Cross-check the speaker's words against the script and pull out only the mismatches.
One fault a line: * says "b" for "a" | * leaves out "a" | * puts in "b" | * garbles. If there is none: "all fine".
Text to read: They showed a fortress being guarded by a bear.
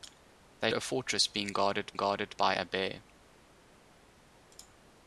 * leaves out "showed"
* puts in "guarded"